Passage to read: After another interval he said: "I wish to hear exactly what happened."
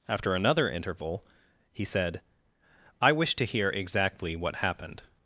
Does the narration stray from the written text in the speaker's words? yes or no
no